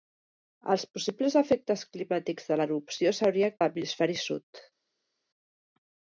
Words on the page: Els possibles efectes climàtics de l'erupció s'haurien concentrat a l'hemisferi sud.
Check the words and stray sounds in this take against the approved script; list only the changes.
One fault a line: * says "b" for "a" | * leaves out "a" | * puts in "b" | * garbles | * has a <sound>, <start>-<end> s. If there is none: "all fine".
* leaves out "concentrat"